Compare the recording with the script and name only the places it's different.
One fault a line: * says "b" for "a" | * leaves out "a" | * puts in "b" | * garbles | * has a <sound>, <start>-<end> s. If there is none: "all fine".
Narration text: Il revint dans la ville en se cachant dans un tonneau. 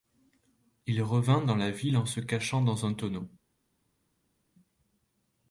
all fine